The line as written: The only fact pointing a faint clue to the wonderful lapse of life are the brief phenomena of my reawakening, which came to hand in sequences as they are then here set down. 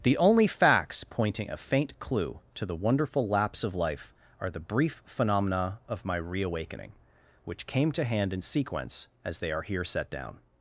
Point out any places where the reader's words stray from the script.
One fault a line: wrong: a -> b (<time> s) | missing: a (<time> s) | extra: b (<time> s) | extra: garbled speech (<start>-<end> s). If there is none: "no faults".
wrong: fact -> facts (0.5 s)
wrong: sequences -> sequence (8.4 s)
missing: then (9.6 s)